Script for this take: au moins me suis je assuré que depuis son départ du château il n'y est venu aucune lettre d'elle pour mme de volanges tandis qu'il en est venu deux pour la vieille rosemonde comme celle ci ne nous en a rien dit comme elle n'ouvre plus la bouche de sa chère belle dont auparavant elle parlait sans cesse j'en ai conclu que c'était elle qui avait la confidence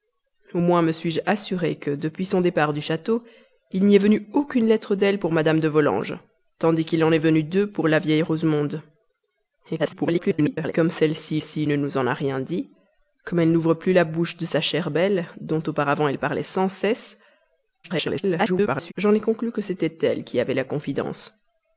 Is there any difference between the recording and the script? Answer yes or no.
yes